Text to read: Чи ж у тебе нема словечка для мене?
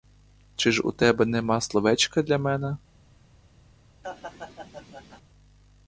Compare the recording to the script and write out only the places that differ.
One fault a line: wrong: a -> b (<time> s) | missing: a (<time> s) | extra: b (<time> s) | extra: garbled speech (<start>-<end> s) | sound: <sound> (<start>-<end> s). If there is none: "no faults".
sound: laugh (4.0-5.2 s)